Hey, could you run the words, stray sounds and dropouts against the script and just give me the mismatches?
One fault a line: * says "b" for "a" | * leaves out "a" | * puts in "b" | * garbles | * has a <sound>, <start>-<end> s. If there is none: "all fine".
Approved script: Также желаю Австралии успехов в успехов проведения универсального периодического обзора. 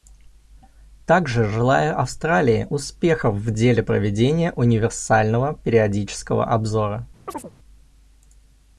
* says "деле" for "успехов"
* has a chirp, 7.3-7.5 s